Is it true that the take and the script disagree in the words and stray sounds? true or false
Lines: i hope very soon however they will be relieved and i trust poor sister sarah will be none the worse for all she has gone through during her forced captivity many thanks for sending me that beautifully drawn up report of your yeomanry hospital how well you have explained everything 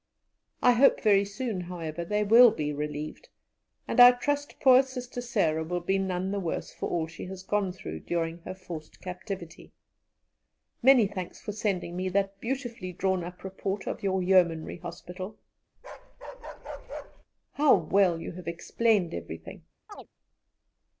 true